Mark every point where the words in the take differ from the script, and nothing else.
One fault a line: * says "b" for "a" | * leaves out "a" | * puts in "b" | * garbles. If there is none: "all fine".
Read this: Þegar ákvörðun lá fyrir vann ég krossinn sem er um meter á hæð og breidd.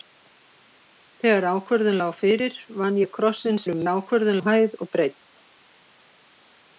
* leaves out "sem"
* says "ákvörðun" for "meter"